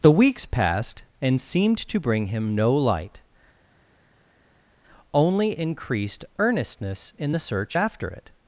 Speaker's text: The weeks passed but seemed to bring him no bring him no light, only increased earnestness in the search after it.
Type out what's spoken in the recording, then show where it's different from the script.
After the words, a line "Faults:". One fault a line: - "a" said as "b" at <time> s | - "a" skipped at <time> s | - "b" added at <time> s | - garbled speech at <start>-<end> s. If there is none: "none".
The weeks passed and seemed to bring him no light, only increased earnestness in the search after it.
Faults:
- "but" said as "and" at 1.2 s
- "bring him no" skipped at 2.7 s